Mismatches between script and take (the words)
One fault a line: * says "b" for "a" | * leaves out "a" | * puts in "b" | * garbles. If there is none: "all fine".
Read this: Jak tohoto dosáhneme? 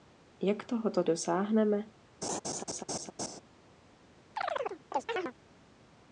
all fine